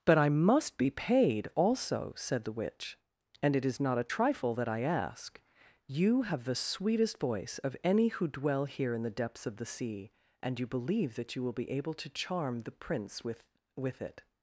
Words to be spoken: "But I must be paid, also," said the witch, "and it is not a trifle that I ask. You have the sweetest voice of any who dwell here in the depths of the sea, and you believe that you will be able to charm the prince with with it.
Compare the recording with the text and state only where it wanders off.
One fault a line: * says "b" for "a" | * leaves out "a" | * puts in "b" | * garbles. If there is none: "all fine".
all fine